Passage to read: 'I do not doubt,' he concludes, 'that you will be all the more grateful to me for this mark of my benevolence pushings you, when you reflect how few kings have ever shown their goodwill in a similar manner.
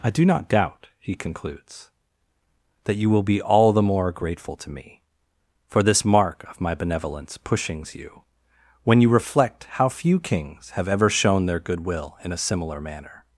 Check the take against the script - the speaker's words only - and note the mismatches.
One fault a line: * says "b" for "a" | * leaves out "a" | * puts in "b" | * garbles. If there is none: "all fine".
all fine